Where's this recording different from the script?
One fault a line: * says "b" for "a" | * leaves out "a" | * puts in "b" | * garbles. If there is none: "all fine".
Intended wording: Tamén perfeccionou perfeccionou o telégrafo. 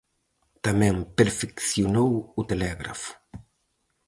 * leaves out "perfeccionou"